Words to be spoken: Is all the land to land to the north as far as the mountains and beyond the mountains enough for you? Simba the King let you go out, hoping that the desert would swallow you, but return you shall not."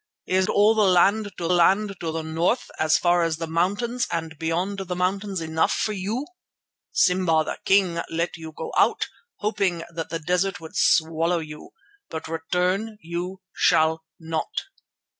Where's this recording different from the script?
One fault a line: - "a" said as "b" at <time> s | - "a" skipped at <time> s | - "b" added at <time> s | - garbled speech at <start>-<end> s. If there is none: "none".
none